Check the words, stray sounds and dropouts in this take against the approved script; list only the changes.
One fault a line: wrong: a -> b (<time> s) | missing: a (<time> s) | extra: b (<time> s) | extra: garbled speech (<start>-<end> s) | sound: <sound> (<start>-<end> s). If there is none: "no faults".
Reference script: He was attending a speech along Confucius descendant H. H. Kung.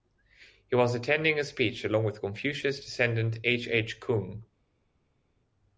extra: with (2.0 s)